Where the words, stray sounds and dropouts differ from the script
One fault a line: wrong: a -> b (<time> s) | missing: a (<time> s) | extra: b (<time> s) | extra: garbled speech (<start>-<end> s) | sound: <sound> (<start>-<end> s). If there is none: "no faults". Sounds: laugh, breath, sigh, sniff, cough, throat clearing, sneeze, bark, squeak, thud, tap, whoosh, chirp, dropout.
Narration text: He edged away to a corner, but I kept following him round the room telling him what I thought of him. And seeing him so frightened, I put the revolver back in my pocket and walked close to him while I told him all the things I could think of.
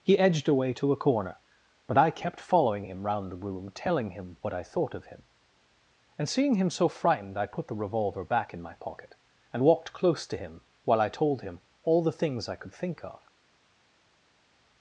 no faults